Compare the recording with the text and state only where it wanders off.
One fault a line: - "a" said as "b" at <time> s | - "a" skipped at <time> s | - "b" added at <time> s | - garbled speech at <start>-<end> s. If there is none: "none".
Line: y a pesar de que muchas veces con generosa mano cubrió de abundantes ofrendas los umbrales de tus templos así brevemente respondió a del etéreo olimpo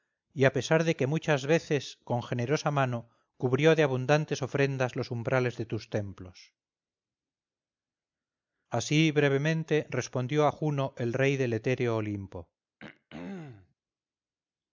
- "juno el rey" added at 10.5 s